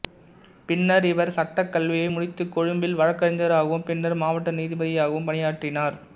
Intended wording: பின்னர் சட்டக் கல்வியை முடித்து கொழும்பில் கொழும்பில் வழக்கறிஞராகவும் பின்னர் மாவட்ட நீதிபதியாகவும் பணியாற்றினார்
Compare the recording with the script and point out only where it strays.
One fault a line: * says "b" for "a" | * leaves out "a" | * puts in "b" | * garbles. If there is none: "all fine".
* puts in "இவர்"
* leaves out "கொழும்பில்"